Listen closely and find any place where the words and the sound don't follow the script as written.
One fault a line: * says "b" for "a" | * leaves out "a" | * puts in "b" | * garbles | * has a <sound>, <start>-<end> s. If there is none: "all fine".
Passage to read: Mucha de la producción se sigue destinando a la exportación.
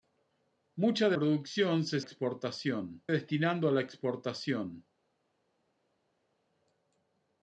* leaves out "la"
* says "exportación" for "sigue"